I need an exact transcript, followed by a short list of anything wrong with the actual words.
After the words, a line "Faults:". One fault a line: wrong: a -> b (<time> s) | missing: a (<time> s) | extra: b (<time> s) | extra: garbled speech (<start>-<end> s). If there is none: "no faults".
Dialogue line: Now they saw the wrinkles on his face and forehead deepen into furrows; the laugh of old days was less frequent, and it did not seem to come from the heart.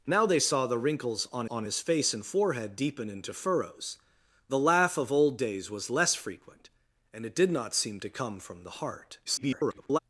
Now they saw the wrinkles on on his face and forehead deepen into furrows; the laugh of old days was less frequent, and it did not seem to come from the heart. [garbled]
Faults:
extra: on (1.5 s)
extra: garbled speech (9.3-10.0 s)